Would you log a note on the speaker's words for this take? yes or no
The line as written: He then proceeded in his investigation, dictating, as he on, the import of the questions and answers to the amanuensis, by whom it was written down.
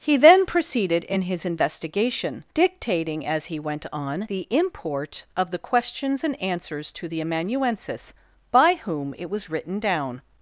yes